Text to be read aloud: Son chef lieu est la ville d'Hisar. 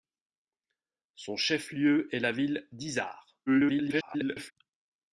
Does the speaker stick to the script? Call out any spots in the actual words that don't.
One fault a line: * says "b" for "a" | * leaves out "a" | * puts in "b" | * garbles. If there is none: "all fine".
* garbles